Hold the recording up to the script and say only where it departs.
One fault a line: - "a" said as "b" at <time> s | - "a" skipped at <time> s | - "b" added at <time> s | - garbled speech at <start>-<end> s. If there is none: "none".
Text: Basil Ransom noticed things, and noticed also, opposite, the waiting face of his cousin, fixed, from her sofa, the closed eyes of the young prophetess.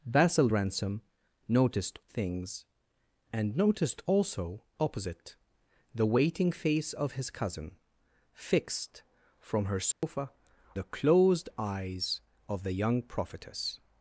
none